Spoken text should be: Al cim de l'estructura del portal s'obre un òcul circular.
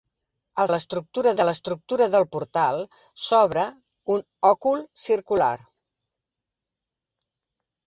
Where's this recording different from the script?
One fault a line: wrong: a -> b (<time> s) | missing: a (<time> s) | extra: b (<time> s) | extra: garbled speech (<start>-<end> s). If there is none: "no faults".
wrong: cim -> l'estructura (0.7 s)